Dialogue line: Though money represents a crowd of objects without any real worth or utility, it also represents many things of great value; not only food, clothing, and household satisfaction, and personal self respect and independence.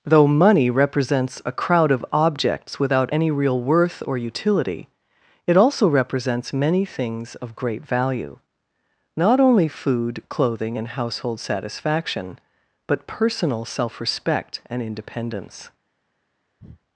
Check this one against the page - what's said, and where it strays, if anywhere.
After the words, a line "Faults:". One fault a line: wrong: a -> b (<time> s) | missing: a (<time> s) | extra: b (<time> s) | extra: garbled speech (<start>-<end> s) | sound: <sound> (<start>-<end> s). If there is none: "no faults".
Though money represents a crowd of objects without any real worth or utility, it also represents many things of great value; not only food, clothing, and household satisfaction, but personal self respect and independence.
Faults:
wrong: and -> but (12.9 s)
sound: breath (16.6-16.8 s)